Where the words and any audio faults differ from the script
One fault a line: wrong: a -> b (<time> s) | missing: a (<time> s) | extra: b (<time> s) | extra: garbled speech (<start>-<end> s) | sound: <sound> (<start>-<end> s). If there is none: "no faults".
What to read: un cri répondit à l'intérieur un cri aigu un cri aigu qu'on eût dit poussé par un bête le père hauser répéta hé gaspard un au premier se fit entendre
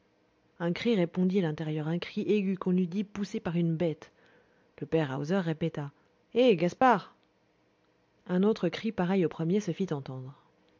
missing: un cri aigu (2.6 s)
wrong: un -> une (3.5 s)
sound: dropout (6.8-6.8 s)
extra: autre cri pareil (8.4 s)